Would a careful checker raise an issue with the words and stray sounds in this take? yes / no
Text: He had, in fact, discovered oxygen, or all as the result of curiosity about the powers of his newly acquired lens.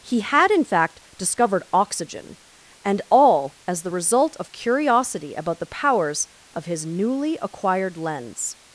yes